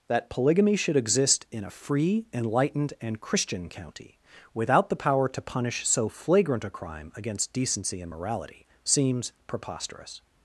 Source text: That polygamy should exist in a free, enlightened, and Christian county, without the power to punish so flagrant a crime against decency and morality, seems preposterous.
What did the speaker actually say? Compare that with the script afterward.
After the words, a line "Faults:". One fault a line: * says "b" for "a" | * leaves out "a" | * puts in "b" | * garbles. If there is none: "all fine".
That polygamy should exist in a free, enlightened, and Christian county, without the power to punish so flagrant a crime against decency and morality, seems preposterous.
Faults:
all fine